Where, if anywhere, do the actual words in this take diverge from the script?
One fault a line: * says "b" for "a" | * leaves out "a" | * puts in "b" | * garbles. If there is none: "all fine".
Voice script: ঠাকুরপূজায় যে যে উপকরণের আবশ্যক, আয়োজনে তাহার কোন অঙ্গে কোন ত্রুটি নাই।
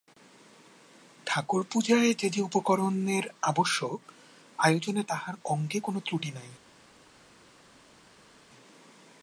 * leaves out "কোন"